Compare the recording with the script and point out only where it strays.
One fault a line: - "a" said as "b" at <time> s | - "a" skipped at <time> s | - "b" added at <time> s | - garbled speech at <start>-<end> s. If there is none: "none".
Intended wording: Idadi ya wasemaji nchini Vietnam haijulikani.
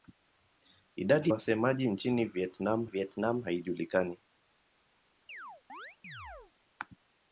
- "ya" skipped at 1.3 s
- "Vietnam" added at 2.8 s